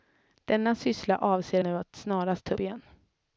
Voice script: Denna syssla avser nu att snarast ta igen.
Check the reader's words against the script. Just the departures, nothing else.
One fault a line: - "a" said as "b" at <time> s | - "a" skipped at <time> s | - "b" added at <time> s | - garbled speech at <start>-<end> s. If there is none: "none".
none